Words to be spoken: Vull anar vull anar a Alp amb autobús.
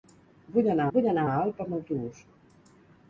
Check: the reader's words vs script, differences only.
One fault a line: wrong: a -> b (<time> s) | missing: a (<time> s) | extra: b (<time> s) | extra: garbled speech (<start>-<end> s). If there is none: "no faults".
no faults